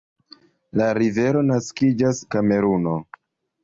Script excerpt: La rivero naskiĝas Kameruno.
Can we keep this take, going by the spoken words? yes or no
yes